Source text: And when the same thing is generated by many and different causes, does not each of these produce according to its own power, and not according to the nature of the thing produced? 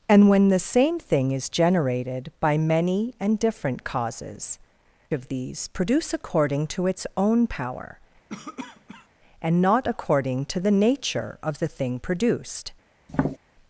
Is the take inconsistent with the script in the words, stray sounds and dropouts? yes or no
yes